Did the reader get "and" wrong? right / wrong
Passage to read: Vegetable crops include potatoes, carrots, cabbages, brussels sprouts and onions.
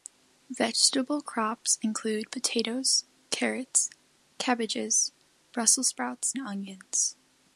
wrong